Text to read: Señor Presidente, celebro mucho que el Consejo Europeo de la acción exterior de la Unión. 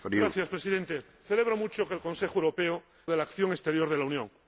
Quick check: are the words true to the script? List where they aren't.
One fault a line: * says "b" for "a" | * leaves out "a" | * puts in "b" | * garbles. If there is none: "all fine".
all fine